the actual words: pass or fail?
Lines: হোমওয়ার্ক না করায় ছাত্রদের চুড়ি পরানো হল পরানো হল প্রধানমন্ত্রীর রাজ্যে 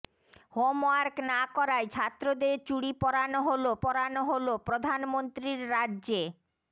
pass